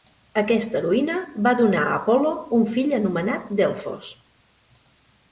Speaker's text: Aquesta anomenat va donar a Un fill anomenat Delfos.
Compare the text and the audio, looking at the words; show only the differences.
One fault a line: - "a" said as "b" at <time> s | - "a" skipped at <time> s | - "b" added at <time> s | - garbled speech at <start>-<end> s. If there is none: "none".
- "anomenat" said as "heroïna" at 0.8 s
- "Apol·lo" added at 2.0 s